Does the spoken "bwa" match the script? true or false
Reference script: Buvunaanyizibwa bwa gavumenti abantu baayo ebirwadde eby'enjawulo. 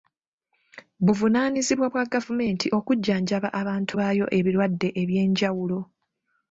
true